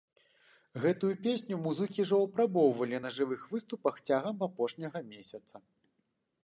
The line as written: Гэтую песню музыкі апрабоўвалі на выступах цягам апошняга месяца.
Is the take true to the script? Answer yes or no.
no